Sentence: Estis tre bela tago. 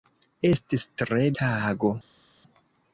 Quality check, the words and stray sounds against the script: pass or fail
fail